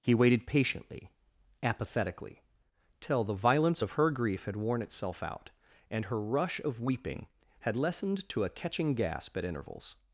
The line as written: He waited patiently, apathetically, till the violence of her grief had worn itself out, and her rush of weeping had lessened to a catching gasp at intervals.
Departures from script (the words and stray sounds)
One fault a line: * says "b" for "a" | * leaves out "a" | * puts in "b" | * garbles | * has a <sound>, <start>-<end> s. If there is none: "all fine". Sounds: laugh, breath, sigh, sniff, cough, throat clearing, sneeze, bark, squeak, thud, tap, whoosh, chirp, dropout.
all fine